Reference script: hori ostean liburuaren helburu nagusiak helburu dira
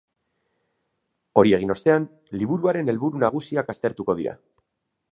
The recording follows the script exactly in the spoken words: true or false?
false